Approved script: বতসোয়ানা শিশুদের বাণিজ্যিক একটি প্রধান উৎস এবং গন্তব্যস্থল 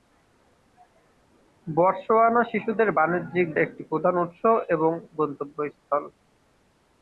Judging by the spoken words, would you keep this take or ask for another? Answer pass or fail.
pass